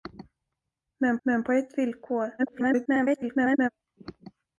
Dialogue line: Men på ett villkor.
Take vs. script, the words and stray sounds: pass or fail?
fail